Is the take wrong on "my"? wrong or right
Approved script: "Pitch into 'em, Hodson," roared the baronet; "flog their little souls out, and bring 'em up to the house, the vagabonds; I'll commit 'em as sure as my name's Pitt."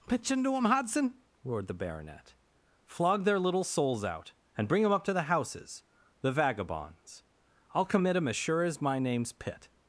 right